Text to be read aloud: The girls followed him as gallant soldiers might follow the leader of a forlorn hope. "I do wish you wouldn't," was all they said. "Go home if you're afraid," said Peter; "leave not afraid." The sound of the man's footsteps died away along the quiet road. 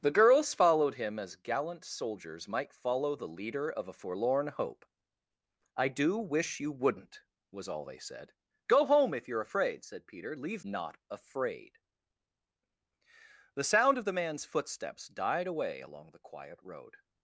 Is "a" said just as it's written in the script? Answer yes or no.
yes